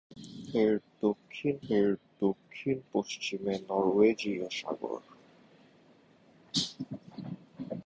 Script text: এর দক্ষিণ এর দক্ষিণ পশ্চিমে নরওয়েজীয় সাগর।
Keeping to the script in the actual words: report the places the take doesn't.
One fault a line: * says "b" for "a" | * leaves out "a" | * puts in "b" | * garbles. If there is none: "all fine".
all fine